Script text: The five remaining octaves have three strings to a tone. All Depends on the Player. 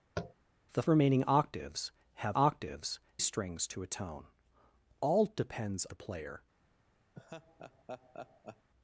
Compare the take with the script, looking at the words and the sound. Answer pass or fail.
fail